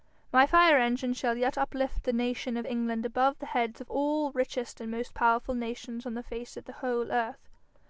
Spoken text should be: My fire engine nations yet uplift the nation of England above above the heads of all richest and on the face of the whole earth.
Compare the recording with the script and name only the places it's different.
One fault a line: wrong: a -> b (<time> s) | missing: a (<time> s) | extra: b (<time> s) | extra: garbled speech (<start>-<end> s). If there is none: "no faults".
wrong: nations -> shall (1.1 s)
missing: above (3.4 s)
extra: most powerful nations (4.9 s)